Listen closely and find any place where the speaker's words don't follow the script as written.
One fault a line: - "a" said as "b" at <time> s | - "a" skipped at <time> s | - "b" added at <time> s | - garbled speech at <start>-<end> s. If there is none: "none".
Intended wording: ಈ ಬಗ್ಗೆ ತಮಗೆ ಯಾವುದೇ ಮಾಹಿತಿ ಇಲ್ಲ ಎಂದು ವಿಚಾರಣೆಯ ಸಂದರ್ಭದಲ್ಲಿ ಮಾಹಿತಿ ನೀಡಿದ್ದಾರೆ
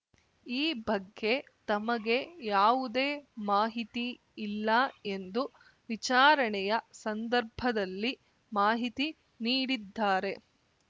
none